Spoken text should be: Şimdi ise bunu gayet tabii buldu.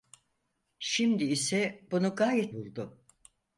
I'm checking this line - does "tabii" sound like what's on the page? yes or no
no